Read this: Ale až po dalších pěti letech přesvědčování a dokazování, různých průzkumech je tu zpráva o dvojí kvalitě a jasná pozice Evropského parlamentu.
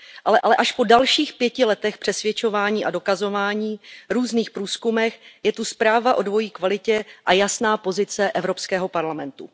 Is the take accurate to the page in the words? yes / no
no